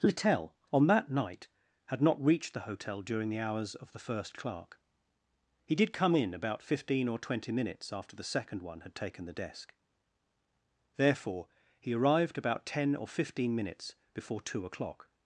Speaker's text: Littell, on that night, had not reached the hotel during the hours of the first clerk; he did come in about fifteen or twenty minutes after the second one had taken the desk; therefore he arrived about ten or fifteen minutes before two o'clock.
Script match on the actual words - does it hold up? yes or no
yes